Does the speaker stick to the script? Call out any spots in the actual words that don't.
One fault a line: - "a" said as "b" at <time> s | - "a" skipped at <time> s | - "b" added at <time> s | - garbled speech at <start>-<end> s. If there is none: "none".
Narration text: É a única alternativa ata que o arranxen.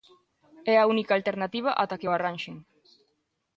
none